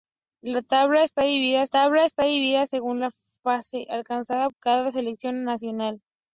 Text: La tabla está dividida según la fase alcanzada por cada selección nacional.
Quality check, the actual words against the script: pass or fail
fail